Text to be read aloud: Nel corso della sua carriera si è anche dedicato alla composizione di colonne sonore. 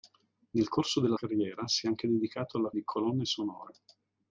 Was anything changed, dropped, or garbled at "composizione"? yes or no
yes